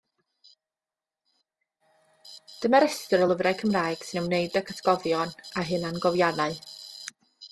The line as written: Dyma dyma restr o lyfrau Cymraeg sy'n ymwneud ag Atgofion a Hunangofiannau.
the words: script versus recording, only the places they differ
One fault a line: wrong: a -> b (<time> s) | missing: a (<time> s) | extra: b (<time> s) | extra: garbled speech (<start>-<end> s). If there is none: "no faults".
missing: dyma (2.8 s)